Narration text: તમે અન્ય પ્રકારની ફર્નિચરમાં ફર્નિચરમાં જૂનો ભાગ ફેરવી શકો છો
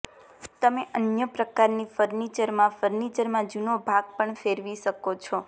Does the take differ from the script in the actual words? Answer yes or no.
yes